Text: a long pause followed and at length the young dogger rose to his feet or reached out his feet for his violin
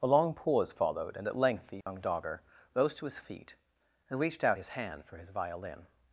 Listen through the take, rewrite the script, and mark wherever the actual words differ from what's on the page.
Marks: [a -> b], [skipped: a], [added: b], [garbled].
a long pause followed and at length the young dogger rose to his feet [or -> and] reached out his [feet -> hand] for his violin